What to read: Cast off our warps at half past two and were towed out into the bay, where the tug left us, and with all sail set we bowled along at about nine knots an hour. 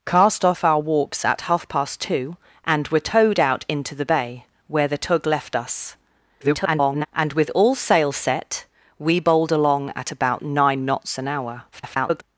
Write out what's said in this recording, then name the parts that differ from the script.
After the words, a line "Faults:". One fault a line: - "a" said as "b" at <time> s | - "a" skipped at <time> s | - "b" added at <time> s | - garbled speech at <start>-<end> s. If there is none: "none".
Cast off our warps at half past two and were towed out into the bay, where the tug left us, [garbled] and with all sail set we bowled along at about nine knots an hour. [garbled]
Faults:
- garbled speech at 6.4-7.1 s
- garbled speech at 11.7-12.2 s